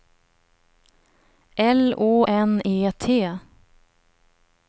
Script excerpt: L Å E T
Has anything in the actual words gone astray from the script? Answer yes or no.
yes